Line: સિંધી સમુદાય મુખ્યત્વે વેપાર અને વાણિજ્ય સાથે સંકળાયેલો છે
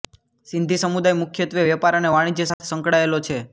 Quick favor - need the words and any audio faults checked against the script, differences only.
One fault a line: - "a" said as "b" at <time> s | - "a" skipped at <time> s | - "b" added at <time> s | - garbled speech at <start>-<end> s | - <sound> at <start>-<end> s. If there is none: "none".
- dropout at 2.5-2.6 s